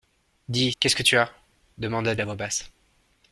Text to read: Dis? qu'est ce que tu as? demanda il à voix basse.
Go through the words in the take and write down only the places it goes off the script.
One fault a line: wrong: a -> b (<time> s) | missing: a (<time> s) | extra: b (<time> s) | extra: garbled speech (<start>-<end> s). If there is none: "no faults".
no faults